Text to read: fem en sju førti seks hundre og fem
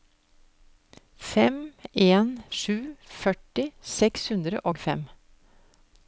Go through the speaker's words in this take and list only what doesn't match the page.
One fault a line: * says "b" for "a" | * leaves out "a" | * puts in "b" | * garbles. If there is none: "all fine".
all fine